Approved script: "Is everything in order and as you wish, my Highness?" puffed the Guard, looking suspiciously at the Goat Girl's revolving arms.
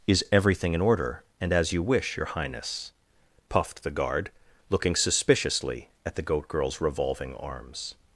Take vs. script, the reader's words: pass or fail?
fail